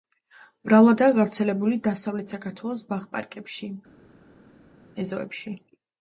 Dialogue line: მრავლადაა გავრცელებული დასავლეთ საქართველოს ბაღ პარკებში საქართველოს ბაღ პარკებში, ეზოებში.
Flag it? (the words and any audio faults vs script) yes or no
yes